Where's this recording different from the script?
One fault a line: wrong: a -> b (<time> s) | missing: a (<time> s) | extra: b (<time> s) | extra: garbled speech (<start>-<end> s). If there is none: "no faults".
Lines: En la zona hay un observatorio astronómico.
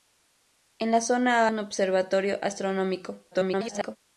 missing: hay (1.5 s)
extra: garbled speech (3.3-4.0 s)